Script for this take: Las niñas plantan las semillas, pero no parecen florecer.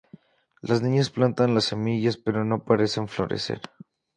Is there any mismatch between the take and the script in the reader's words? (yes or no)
no